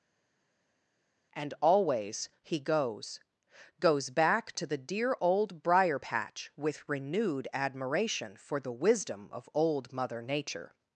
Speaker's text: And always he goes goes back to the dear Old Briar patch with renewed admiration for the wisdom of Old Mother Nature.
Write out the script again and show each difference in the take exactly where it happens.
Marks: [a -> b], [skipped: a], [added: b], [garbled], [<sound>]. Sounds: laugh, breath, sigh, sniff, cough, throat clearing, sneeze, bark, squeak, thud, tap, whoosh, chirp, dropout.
And always he goes goes back to the dear Old Briar patch with renewed admiration for the wisdom of Old Mother Nature.